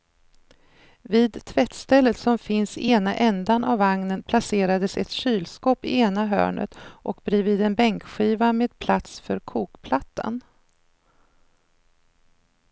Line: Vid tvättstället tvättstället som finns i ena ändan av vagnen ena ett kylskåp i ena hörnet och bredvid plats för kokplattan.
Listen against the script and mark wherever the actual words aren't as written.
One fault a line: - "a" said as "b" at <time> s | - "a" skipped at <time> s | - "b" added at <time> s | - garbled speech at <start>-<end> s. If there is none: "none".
- "tvättstället" skipped at 2.2 s
- "ena" said as "placerades" at 4.2 s
- "en bänkskiva med" added at 7.6 s